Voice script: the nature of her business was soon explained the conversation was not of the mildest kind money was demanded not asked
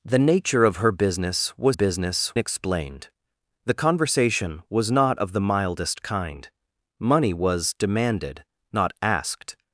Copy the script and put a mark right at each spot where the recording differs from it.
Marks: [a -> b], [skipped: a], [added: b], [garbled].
the nature of her business was [soon -> business] explained the conversation was not of the mildest kind money was demanded not asked